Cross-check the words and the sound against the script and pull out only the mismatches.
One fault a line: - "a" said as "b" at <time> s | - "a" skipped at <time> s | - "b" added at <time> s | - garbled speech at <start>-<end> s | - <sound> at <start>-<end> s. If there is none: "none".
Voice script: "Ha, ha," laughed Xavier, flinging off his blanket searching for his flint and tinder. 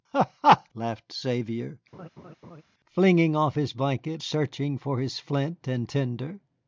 - laugh at 1.9-2.6 s